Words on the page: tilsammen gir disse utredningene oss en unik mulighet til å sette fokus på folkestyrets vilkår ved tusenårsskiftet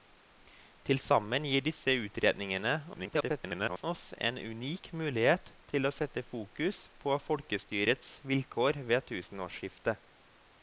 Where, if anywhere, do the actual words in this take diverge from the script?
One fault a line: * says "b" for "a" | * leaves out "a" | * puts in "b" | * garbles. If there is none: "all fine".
* garbles